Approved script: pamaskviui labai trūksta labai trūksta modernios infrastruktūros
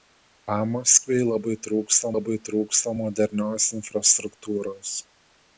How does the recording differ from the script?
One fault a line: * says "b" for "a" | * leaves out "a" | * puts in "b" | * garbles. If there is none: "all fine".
all fine